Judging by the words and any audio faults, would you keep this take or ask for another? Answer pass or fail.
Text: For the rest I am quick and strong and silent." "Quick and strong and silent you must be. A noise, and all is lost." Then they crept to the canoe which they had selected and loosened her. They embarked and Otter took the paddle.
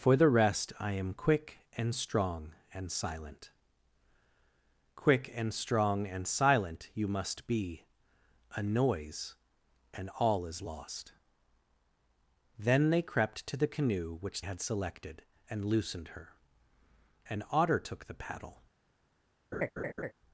fail